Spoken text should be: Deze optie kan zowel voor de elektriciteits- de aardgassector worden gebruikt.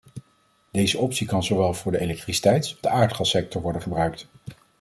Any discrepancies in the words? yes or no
no